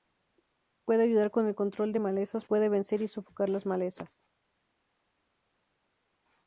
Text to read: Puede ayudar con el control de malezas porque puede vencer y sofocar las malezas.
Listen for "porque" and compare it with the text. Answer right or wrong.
wrong